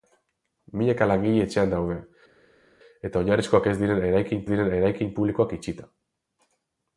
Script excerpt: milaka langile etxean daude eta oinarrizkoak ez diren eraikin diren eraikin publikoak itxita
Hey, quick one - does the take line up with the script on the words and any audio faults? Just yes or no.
yes